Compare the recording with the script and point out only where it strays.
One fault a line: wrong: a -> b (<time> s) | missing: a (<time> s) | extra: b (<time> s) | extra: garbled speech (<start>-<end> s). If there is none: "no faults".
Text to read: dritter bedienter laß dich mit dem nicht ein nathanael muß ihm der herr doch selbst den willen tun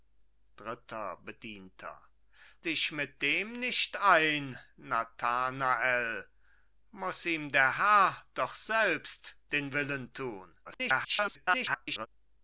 missing: laß (1.9 s)
extra: garbled speech (10.6-12.1 s)